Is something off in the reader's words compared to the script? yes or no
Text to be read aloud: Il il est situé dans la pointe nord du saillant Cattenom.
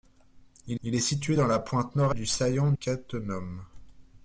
no